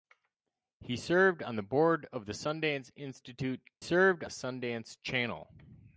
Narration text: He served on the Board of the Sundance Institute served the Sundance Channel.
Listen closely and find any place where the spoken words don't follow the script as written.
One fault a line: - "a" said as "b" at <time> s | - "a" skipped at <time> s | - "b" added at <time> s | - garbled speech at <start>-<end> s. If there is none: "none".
none